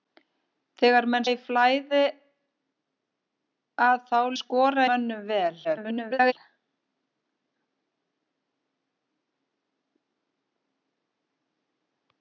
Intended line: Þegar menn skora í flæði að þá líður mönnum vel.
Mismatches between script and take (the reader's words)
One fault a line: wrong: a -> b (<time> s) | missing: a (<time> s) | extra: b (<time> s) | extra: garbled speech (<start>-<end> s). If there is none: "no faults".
missing: skora (1.2 s)
wrong: líður -> skora (4.4 s)
extra: garbled speech (5.6-6.3 s)